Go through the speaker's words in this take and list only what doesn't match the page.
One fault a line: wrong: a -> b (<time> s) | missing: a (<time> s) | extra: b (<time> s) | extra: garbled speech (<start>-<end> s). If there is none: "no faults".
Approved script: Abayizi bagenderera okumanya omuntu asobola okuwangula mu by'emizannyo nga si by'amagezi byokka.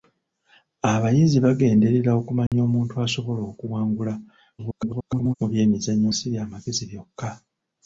extra: garbled speech (4.6-5.3 s)
missing: nga (6.1 s)